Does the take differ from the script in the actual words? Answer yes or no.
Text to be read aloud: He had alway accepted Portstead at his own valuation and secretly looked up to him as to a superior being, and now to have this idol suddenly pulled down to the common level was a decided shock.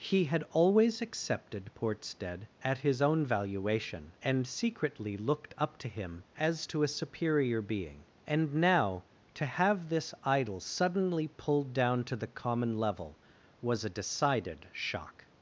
yes